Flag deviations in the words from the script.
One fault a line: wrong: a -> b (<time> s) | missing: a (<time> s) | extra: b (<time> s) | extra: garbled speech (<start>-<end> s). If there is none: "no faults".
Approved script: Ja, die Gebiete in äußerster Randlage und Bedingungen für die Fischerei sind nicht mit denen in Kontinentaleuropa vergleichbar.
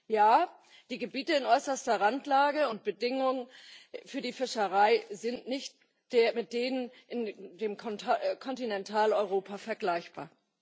no faults